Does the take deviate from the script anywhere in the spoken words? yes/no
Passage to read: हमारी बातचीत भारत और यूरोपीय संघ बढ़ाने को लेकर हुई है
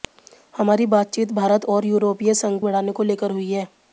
no